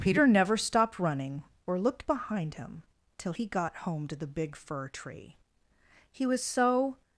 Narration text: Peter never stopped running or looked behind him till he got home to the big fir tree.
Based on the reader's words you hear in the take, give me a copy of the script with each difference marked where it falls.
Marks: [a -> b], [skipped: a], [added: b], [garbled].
Peter never stopped running or looked behind him till he got home to the big fir tree. [added: He was so]